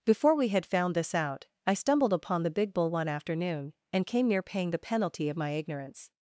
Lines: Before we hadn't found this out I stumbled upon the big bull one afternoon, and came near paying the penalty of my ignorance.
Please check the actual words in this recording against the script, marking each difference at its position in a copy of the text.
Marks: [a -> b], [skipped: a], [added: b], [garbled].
Before we [hadn't -> had] found this out I stumbled upon the big bull one afternoon, and came near paying the penalty of my ignorance.